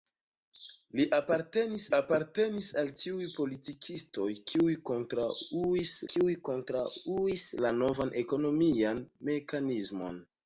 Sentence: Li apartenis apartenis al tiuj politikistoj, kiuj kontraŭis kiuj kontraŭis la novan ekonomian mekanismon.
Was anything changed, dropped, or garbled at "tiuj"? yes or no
no